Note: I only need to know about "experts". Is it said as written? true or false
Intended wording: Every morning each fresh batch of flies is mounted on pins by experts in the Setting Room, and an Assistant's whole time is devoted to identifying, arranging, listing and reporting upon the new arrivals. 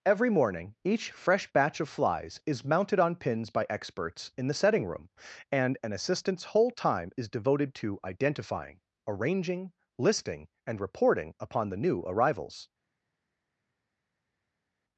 true